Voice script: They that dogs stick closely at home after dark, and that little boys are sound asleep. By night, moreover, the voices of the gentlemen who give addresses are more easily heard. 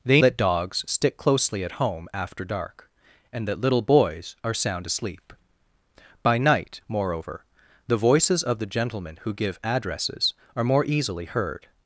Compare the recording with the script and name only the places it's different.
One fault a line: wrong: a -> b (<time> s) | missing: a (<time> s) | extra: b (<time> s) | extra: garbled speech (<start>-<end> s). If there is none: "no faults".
no faults